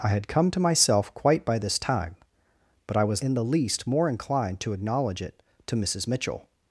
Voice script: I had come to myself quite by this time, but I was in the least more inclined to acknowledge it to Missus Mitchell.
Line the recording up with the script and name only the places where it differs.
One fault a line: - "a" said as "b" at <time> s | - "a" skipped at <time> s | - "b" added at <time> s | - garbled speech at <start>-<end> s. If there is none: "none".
none